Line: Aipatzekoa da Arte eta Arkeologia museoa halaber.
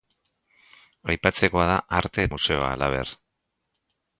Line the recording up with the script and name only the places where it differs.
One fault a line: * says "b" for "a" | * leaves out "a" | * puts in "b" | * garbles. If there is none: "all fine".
* leaves out "eta Arkeologia"